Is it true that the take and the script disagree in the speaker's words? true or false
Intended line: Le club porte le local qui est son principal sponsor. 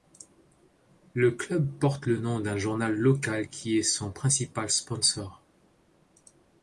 true